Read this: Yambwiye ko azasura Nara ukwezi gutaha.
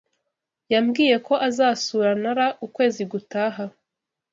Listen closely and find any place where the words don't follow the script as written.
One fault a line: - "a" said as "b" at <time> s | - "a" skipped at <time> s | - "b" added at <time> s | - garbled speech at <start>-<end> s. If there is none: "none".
none